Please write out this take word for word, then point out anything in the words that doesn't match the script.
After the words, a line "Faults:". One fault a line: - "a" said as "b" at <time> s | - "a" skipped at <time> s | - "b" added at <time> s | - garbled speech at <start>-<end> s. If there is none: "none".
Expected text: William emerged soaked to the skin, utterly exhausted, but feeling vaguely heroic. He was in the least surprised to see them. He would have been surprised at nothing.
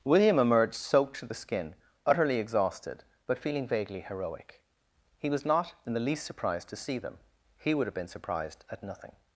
William emerged soaked to the skin, utterly exhausted, but feeling vaguely heroic. He was not in the least surprised to see them. He would have been surprised at nothing.
Faults:
- "not" added at 5.5 s